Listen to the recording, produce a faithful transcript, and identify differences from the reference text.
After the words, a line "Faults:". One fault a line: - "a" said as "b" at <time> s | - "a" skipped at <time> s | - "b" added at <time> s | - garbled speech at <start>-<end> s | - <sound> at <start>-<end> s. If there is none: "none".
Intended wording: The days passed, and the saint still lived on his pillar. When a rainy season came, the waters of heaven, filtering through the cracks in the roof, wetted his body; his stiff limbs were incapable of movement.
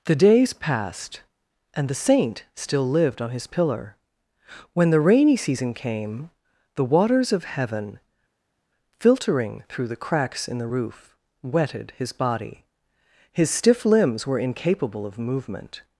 The days passed, and the saint still lived on his pillar. When the rainy season came, the waters of heaven, filtering through the cracks in the roof, wetted his body; his stiff limbs were incapable of movement.
Faults:
- "a" said as "the" at 4.9 s